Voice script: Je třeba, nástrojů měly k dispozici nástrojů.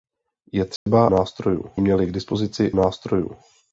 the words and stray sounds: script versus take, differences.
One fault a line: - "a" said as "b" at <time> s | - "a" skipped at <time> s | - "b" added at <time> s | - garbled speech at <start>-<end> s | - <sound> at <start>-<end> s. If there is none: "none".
- dropout at 0.8-0.9 s